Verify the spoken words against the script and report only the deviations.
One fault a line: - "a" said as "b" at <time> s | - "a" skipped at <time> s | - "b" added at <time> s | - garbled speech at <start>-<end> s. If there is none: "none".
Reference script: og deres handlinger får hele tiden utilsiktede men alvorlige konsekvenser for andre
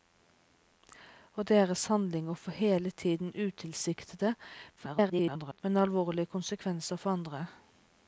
- garbled speech at 4.8-5.6 s